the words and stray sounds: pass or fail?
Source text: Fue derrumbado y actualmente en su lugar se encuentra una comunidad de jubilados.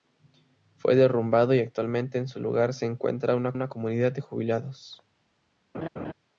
fail